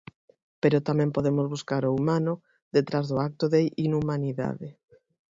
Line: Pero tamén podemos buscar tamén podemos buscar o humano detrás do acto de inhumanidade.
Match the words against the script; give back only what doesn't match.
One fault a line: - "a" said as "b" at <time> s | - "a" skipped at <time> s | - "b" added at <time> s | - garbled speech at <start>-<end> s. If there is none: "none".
- "tamén podemos buscar" skipped at 1.8 s